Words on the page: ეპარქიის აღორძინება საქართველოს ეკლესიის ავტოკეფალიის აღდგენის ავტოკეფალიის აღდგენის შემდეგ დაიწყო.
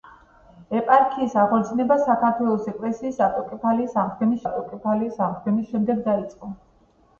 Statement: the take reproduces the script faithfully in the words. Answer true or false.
true